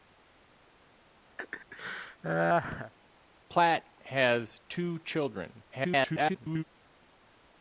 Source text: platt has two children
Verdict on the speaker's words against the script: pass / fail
fail